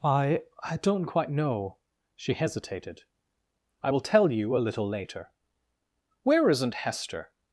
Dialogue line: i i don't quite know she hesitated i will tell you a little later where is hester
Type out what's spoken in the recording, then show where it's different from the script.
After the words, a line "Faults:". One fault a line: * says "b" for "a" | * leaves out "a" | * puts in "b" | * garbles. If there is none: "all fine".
i i don't quite know she hesitated i will tell you a little later where isn't hester
Faults:
* says "isn't" for "is"